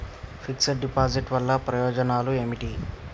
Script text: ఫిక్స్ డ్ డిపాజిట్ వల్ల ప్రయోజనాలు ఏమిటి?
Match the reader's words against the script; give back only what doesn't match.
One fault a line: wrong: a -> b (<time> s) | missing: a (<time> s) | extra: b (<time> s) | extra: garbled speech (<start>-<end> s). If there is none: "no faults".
no faults